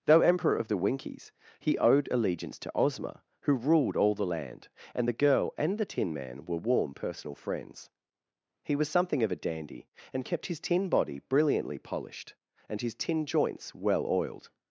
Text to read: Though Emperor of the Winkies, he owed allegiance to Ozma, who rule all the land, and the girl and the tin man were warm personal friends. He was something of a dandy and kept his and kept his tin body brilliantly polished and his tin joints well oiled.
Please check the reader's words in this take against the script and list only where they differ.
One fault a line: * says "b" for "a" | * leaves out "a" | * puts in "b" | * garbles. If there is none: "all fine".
* says "ruled" for "rule"
* leaves out "and kept his"